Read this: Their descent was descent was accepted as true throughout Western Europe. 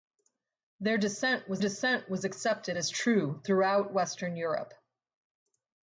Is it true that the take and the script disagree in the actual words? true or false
false